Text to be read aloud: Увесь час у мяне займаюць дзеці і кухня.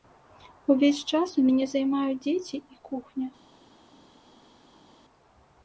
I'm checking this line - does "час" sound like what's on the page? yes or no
yes